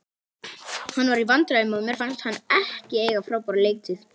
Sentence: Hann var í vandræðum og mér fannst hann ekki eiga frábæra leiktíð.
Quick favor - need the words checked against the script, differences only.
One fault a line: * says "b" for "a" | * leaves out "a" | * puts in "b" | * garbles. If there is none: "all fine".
all fine